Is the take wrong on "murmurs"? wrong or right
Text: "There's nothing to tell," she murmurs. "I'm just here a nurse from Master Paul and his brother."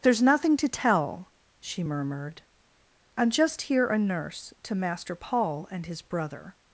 wrong